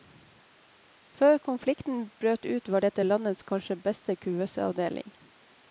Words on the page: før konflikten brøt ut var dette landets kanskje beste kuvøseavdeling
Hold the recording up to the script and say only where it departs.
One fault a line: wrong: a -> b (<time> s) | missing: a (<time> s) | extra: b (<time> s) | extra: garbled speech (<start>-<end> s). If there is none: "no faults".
no faults